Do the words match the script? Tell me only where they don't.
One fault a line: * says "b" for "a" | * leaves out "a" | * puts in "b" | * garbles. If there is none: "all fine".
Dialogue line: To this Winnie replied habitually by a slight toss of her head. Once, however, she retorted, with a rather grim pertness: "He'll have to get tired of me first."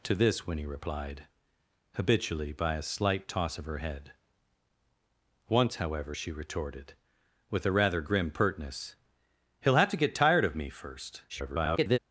* garbles